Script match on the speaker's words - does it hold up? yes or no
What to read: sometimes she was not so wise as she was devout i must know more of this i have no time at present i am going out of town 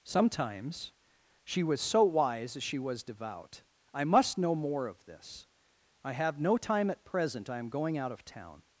no